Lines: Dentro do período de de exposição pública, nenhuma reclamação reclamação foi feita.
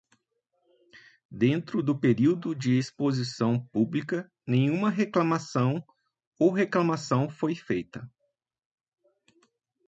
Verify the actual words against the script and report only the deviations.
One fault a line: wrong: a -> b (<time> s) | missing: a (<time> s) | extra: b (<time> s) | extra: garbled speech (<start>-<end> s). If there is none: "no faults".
missing: de (2.8 s)
extra: ou (6.4 s)